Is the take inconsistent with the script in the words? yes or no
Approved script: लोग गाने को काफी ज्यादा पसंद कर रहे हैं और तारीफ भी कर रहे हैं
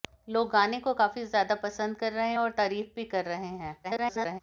yes